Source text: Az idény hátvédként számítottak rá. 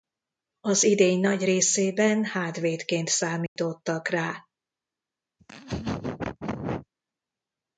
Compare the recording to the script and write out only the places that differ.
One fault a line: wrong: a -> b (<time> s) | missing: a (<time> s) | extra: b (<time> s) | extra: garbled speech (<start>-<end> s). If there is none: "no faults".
extra: nagy részében (1.2 s)